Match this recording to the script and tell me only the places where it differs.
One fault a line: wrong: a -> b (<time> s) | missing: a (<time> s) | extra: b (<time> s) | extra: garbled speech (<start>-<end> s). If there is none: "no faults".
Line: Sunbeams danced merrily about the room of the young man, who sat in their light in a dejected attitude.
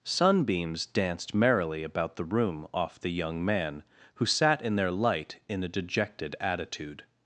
wrong: of -> off (2.7 s)